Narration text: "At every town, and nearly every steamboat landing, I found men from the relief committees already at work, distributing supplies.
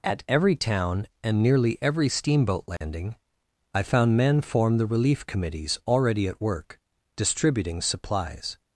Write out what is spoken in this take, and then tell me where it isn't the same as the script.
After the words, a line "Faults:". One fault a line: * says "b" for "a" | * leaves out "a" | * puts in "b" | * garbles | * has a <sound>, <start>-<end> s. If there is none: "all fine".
"At every town, and nearly every steamboat landing, I found men form the relief committees already at work, distributing supplies.
Faults:
* has a dropout, 2.8-2.8 s
* says "form" for "from"